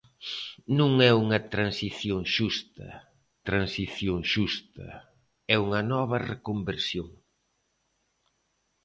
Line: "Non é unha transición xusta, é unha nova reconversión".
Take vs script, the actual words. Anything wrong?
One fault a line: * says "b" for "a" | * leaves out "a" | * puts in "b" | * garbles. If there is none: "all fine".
* puts in "transición xusta"